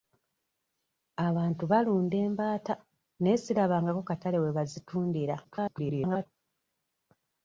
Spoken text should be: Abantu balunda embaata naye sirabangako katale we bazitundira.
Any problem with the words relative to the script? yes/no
yes